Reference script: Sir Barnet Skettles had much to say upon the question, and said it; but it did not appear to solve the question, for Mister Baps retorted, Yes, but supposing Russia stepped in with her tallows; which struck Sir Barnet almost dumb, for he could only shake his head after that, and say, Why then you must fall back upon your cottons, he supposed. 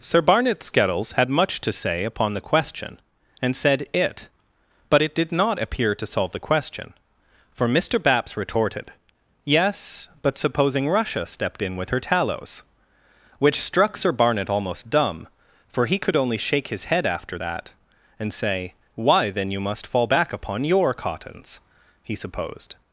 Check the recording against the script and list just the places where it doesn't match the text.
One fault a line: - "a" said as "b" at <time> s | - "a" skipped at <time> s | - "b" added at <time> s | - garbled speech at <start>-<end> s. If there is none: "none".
none